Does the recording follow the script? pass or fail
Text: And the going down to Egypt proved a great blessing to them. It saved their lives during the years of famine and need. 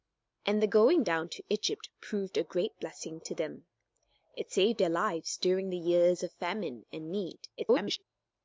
fail